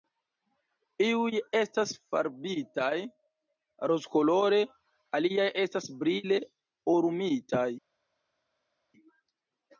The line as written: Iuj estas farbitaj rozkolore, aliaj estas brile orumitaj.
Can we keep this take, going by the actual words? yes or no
yes